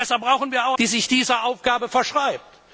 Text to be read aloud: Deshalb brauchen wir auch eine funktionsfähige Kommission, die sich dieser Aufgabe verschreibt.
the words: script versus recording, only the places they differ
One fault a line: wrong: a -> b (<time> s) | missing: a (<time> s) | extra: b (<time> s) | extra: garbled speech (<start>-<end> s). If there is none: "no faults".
missing: eine funktionsfähige Kommission (0.8 s)